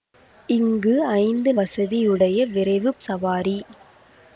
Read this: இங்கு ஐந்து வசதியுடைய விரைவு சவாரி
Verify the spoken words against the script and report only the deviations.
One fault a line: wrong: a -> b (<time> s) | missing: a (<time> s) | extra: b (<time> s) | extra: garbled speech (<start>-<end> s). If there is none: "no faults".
no faults